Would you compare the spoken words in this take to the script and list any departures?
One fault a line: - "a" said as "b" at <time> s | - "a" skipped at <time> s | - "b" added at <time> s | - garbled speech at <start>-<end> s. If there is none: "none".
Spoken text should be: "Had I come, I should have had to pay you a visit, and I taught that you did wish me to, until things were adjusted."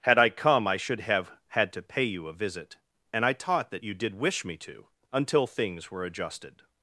none